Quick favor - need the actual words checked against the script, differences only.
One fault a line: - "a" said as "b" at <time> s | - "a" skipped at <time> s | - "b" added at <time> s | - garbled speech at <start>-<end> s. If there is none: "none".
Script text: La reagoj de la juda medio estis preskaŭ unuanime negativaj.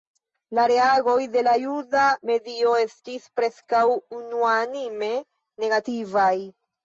none